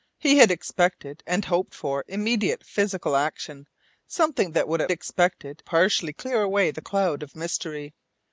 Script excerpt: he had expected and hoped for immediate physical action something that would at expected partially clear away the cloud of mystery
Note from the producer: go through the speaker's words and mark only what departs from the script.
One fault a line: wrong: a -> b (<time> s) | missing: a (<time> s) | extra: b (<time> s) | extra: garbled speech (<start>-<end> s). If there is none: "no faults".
no faults